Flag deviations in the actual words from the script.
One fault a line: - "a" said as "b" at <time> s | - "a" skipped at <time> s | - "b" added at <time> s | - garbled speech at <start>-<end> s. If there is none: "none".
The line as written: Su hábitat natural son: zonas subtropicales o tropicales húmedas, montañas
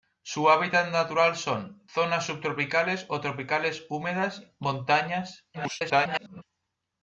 - garbled speech at 5.5-6.4 s